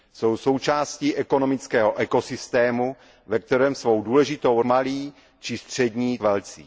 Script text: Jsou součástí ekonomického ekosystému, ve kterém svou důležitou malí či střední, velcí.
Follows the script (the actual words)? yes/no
yes